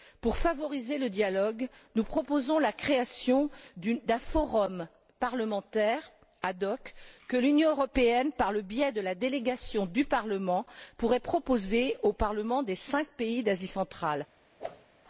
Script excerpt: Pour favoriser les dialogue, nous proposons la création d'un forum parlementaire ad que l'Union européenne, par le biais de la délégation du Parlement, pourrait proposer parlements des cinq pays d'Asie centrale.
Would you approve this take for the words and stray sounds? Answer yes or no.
no